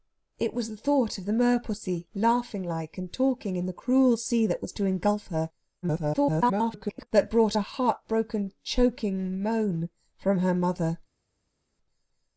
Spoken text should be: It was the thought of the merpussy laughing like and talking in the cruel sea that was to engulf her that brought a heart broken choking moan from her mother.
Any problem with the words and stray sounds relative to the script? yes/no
yes